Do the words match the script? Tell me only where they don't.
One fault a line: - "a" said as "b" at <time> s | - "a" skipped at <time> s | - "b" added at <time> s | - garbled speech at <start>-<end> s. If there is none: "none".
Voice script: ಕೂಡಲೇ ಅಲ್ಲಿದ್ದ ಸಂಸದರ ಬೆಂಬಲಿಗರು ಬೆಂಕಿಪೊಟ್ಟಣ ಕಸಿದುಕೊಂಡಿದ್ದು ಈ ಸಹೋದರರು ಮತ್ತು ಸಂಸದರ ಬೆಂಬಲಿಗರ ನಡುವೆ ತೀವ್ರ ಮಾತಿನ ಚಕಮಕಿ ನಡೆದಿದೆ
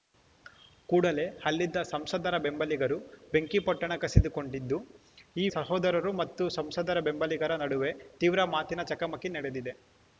none